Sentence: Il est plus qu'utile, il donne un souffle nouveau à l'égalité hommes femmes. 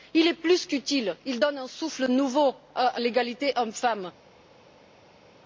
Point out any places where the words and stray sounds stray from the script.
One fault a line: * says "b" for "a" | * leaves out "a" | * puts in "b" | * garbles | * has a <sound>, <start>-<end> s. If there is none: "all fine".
all fine